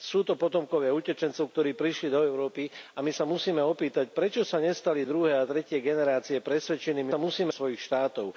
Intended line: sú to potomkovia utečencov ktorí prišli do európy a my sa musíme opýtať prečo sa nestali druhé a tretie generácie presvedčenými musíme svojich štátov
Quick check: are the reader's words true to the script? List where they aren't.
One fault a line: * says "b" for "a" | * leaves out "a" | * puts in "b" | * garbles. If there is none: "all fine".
all fine